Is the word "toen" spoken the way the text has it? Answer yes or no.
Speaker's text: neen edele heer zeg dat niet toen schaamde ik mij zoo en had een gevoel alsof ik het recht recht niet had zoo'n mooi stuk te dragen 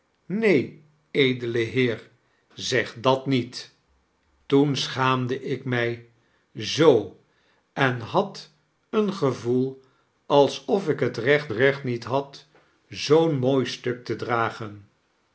yes